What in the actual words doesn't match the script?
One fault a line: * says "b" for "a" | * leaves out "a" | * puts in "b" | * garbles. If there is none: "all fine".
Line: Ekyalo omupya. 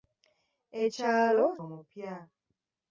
all fine